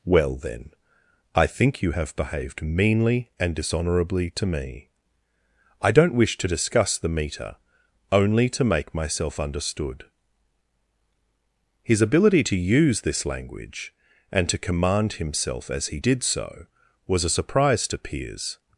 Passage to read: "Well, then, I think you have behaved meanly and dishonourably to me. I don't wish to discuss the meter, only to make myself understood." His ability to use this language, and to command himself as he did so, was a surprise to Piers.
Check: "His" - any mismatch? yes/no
no